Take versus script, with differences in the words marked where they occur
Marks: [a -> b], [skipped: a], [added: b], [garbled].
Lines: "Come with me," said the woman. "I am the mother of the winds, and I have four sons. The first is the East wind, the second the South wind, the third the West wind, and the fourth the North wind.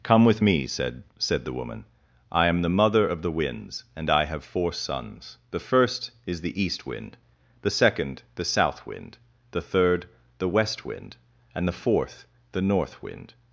"Come with me," said [added: said] the woman. "I am the mother of the winds, and I have four sons. The first is the East wind, the second the South wind, the third the West wind, and the fourth the North wind.